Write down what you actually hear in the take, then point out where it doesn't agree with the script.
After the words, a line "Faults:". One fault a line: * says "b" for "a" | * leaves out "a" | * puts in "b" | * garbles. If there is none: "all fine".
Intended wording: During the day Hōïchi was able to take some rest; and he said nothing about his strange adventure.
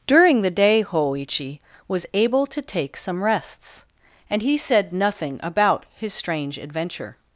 During the day Hōïchi was able to take some rests; and he said nothing about his strange adventure.
Faults:
* says "rests" for "rest"